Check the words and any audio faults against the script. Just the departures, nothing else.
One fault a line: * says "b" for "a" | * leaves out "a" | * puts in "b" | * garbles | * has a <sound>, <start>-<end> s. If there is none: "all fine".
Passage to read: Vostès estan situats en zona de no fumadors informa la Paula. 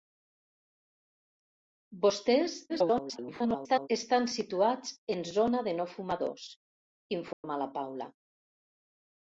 * garbles
* has a dropout, 7.3-7.4 s